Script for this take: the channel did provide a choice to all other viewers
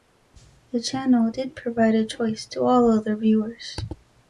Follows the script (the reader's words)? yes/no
yes